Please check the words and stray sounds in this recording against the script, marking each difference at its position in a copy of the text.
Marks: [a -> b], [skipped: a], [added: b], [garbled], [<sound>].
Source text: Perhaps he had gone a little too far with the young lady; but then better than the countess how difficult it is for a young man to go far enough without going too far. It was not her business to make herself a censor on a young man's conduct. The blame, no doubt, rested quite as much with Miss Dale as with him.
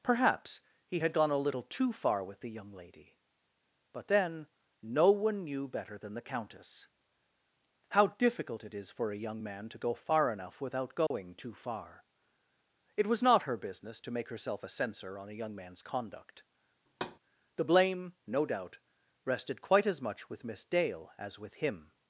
Perhaps he had gone a little too far with the young lady; but then [added: no one knew] better than the countess how difficult it is for a young man to go far enough without going [dropout] too far. It was not her business to make herself a censor on a young man's conduct. [thud] The blame, no doubt, rested quite as much with Miss Dale as with him.